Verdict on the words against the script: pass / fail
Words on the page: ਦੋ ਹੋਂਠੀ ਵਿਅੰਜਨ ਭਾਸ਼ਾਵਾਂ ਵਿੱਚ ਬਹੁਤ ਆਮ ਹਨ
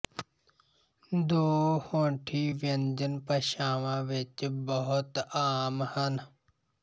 pass